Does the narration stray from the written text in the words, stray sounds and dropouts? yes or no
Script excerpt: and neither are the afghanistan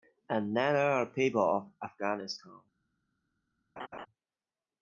yes